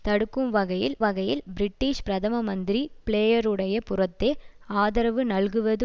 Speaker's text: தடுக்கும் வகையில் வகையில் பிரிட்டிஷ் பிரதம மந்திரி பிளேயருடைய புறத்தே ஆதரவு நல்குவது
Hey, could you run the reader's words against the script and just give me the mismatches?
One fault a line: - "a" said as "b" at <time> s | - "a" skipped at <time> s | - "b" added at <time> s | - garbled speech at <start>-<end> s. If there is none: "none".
none